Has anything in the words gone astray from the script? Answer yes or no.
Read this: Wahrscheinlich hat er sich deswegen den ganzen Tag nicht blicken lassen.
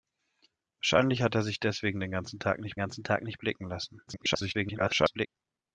yes